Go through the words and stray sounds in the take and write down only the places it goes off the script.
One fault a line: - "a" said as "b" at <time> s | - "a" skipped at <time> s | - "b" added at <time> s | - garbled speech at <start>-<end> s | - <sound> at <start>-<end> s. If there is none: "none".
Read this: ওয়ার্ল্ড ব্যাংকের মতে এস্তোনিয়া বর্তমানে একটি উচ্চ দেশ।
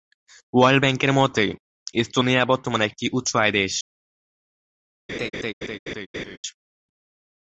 - "আয়" added at 3.4 s
- laugh at 5.1-6.4 s